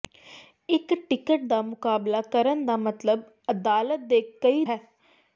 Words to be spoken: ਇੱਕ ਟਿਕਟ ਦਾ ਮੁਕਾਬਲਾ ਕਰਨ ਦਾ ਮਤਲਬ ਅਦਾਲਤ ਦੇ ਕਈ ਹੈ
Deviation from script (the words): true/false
false